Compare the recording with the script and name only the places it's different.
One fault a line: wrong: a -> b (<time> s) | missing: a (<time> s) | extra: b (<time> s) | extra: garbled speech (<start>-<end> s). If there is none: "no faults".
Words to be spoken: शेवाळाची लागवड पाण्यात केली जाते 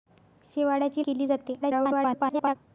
missing: लागवड पाण्यात (1.1 s)
extra: garbled speech (1.6-2.6 s)